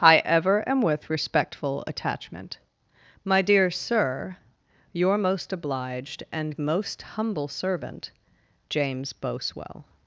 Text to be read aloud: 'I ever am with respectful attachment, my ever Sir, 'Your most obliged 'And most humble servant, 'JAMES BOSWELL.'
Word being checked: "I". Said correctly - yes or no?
yes